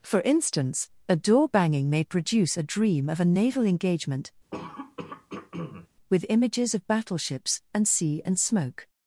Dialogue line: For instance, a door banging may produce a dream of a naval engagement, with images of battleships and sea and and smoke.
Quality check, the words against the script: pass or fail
fail